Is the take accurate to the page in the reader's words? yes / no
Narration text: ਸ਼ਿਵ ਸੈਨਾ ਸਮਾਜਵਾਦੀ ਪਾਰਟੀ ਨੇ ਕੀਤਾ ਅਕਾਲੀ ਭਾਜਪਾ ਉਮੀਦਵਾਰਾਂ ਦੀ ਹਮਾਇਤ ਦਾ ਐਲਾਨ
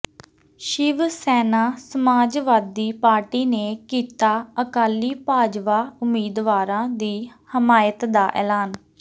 yes